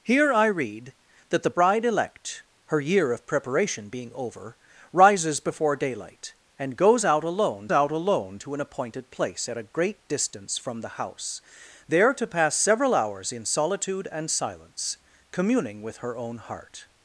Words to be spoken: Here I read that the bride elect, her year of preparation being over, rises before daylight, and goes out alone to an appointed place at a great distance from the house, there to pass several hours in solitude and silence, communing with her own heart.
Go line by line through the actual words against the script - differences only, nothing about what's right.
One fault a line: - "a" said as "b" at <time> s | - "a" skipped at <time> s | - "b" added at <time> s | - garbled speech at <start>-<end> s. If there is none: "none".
- "out alone" added at 7.7 s